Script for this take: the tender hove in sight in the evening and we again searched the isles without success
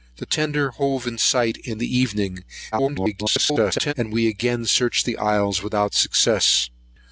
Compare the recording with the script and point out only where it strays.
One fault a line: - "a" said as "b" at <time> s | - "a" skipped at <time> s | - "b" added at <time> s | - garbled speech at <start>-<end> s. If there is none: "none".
- garbled speech at 2.7-3.9 s